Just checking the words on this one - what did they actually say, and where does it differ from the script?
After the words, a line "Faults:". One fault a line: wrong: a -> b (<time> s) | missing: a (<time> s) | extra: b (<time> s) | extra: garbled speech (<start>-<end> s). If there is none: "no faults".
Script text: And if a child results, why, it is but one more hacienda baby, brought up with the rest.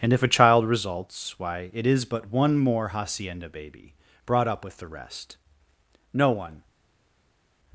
And if a child results, why, it is but one more hacienda baby, brought up with the rest. No one
Faults:
extra: No one (6.1 s)